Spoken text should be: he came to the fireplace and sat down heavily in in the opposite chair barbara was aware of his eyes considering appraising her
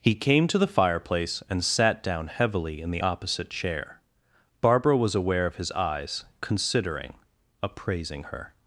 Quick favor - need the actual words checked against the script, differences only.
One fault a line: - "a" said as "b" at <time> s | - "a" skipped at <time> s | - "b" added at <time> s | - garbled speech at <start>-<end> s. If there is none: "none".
- "in" skipped at 2.9 s